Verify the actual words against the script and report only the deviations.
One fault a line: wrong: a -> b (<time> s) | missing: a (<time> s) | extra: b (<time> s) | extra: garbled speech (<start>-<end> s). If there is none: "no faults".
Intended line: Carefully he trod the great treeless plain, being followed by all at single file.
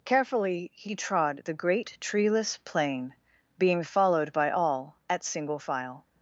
no faults